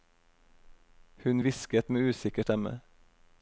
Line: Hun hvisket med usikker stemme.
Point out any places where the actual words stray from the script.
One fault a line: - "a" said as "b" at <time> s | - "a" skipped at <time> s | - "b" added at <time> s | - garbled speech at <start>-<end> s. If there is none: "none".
none